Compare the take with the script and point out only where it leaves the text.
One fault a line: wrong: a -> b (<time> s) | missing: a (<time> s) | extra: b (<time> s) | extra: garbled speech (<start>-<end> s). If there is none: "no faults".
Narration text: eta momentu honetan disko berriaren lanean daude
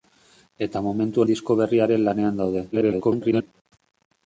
missing: honetan (1.2 s)
extra: garbled speech (2.7-3.5 s)